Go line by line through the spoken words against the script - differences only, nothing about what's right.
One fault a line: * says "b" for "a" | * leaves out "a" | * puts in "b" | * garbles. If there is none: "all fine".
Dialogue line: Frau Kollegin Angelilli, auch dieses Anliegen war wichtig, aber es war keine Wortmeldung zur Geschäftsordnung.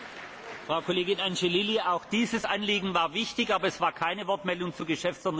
all fine